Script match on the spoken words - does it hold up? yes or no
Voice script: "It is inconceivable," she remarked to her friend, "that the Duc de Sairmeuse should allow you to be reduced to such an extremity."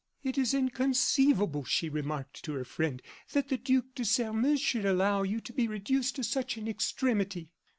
yes